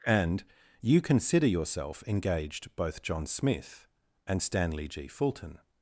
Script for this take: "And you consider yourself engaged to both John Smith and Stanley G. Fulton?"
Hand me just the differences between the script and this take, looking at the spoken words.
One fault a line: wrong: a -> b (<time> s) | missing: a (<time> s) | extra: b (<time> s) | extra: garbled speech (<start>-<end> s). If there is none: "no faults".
missing: to (2.7 s)